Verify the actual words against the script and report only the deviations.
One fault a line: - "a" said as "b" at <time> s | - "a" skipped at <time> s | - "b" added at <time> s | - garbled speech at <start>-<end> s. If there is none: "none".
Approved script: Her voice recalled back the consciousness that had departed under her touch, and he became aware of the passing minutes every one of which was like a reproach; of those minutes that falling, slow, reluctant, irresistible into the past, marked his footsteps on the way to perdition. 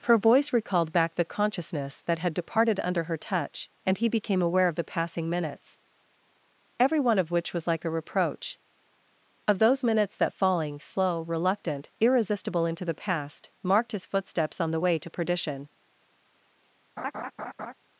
none